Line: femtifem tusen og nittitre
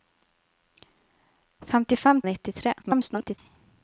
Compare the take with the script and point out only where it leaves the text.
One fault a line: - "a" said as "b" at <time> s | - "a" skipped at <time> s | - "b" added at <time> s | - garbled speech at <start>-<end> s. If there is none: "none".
- "tusen" skipped at 2.2 s
- garbled speech at 2.8-3.4 s